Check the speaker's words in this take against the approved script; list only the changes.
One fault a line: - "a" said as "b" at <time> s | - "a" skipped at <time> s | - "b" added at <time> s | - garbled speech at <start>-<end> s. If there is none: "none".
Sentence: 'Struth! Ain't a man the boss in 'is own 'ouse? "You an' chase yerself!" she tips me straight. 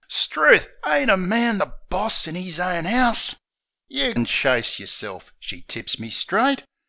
none